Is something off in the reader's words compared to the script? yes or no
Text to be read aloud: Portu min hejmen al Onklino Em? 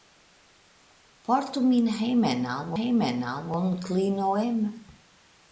yes